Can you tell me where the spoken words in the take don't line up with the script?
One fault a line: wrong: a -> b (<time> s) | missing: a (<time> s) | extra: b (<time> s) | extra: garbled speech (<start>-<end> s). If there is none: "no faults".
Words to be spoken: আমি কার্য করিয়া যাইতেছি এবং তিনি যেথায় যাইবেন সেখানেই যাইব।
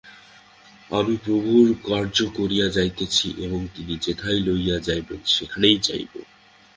extra: প্রভুর (1.2 s)
extra: লইয়া (4.4 s)